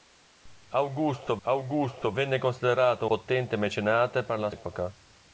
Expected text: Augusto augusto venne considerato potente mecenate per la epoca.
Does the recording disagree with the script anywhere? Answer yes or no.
no